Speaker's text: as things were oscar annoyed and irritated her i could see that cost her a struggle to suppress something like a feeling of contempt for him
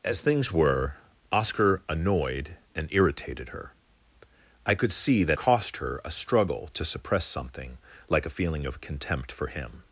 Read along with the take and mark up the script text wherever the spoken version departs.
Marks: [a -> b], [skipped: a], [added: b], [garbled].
as things were oscar annoyed and irritated her i could see that cost her a struggle to suppress something like a feeling of contempt for him